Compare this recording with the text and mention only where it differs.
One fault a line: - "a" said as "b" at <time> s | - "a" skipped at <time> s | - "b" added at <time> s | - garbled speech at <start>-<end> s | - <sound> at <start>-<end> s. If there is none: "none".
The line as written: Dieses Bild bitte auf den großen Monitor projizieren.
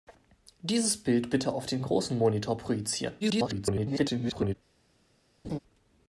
- garbled speech at 3.2-4.5 s
- laugh at 5.4-5.6 s